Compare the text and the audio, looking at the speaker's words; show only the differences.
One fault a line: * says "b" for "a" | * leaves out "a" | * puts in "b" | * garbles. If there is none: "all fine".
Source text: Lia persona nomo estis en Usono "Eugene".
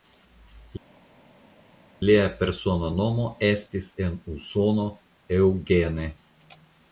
all fine